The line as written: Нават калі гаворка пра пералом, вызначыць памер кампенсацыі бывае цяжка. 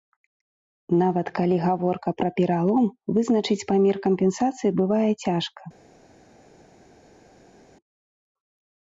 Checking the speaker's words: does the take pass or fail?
pass